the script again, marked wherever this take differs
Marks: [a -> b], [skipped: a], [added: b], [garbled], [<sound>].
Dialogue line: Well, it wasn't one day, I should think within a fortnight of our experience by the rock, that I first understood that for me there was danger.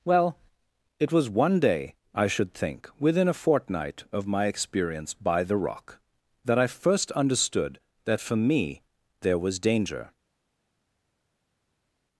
Well, it [wasn't -> was] one day, I should think within a fortnight of [our -> my] experience by the rock, that I first understood that for me there was danger.